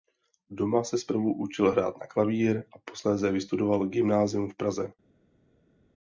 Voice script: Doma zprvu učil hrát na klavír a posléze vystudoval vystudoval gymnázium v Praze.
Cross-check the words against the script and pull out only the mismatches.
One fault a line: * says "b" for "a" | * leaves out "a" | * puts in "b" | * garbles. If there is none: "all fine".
* puts in "se"
* leaves out "vystudoval"